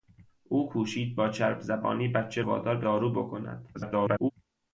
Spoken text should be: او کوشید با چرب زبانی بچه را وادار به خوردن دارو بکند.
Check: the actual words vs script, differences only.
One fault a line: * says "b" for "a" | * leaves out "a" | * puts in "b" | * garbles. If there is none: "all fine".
* leaves out "را"
* leaves out "خوردن"
* garbles